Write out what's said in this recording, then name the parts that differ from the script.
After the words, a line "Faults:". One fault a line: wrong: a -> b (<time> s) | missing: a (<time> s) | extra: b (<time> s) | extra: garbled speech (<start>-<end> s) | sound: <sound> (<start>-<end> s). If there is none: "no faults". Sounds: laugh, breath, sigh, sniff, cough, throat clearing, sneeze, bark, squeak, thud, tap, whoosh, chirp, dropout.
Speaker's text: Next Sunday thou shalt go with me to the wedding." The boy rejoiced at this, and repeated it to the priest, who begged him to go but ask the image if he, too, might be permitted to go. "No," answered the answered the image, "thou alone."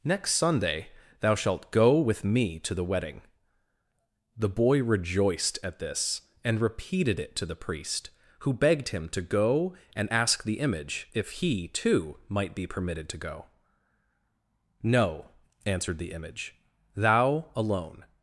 Next Sunday thou shalt go with me to the wedding." The boy rejoiced at this, and repeated it to the priest, who begged him to go and ask the image if he, too, might be permitted to go. "No," answered the image, "thou alone."
Faults:
wrong: but -> and (9.9 s)
missing: answered the (16.1 s)